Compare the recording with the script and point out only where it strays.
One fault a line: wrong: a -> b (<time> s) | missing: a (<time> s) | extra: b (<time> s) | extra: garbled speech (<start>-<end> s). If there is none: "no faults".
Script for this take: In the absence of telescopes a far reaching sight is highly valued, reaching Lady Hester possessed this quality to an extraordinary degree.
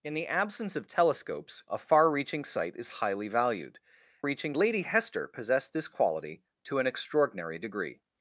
no faults